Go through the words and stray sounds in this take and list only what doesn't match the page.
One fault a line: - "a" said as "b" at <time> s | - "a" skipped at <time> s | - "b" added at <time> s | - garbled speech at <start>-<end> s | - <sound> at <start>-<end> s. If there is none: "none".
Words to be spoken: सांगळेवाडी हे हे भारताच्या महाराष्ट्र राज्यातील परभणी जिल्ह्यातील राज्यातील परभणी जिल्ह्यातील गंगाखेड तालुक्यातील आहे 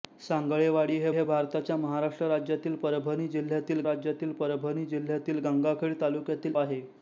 none